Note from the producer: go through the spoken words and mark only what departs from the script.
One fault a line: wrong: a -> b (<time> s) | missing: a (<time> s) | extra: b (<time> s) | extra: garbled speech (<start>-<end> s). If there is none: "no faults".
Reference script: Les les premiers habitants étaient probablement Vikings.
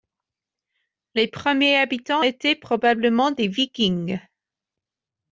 missing: les (1.3 s)
extra: des (3.3 s)